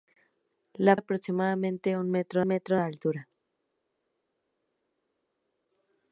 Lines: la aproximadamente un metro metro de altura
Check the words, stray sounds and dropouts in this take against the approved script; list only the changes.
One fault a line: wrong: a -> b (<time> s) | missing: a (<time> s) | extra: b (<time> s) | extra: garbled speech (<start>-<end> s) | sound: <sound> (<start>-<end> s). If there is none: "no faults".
no faults